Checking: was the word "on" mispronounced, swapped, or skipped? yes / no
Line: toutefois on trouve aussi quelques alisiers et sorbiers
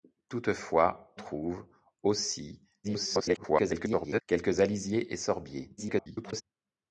yes